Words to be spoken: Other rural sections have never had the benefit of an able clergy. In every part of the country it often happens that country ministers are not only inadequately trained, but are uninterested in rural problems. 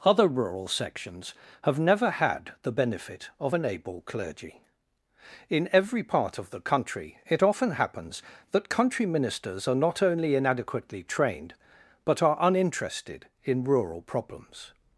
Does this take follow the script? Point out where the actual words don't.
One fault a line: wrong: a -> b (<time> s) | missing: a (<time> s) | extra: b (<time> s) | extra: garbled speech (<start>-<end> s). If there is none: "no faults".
no faults